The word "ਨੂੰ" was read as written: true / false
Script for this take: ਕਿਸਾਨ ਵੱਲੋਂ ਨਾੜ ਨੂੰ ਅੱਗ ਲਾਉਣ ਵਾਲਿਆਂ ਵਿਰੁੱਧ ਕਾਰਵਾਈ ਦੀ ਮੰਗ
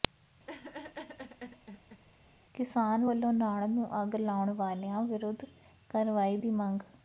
true